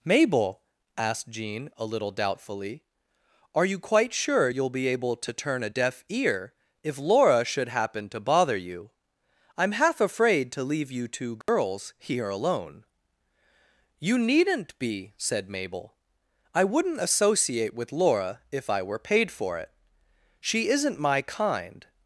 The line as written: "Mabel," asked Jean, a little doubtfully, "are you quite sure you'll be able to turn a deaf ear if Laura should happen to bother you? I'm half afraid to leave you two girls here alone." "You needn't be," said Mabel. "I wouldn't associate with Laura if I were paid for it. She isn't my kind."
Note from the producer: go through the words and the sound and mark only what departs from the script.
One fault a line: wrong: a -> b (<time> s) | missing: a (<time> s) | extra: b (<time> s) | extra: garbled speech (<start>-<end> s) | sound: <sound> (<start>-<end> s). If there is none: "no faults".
sound: dropout (11.4-11.5 s)